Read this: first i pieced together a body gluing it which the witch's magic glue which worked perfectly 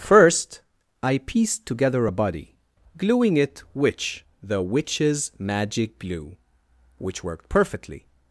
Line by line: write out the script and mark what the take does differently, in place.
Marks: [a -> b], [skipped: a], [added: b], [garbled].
first i pieced together a body gluing it which the witch's magic glue which worked perfectly